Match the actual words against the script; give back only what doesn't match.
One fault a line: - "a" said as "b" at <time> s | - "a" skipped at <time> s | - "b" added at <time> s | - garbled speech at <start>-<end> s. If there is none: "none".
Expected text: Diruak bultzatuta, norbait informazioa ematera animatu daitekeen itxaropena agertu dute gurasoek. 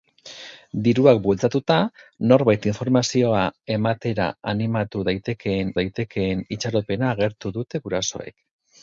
- "daitekeen" added at 5.8 s